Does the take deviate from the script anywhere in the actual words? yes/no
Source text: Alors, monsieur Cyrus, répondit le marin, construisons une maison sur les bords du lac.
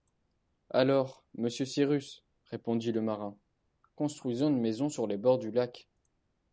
no